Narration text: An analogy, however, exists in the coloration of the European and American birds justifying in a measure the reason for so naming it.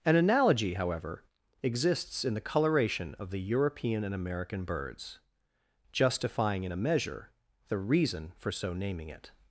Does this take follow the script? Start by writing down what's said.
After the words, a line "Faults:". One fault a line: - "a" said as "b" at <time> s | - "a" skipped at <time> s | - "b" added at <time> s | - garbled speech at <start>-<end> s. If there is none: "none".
An analogy, however, exists in the coloration of the European and American birds justifying in a measure the reason for so naming it.
Faults:
none